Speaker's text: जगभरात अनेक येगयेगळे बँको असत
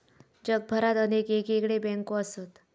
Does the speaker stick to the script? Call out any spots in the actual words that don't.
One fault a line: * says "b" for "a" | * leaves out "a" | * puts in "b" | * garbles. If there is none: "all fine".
all fine